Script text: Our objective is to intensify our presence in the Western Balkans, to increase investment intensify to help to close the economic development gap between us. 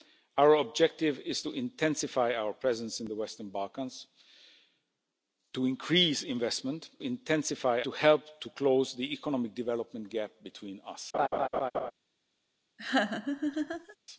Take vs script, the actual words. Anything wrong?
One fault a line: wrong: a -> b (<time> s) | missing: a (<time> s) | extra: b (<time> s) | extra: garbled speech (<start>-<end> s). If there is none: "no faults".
no faults